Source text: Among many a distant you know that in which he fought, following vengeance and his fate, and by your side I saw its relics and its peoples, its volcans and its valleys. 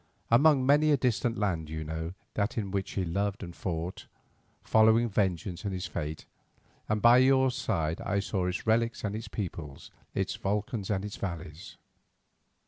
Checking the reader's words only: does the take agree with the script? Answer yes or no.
no